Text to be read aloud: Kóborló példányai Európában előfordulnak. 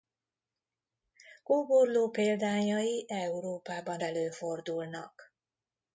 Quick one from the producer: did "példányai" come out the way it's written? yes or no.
yes